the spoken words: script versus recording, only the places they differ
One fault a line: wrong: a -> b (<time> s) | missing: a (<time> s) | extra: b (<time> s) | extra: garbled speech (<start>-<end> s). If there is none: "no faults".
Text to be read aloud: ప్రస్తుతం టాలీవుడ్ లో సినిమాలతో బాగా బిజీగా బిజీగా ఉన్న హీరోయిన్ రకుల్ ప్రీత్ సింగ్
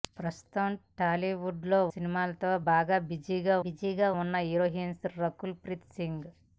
no faults